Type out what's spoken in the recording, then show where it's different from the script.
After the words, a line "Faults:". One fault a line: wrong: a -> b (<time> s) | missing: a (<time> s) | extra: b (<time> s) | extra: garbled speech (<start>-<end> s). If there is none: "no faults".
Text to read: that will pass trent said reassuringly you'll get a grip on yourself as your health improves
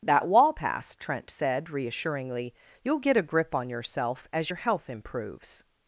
that wall pass trent said reassuringly you'll get a grip on yourself as your health improves
Faults:
wrong: will -> wall (0.3 s)